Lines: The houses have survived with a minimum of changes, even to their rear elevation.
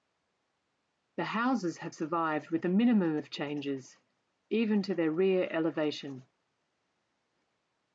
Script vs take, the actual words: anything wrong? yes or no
no